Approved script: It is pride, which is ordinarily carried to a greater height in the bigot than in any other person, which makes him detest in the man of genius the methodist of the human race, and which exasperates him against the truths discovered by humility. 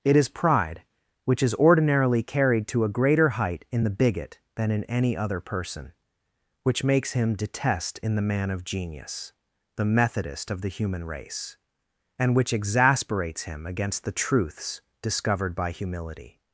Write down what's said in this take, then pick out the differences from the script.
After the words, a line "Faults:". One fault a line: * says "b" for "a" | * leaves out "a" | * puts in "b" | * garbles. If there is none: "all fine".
It is pride, which is ordinarily carried to a greater height in the bigot than in any other person, which makes him detest in the man of genius the methodist of the human race, and which exasperates him against the truths discovered by humility.
Faults:
all fine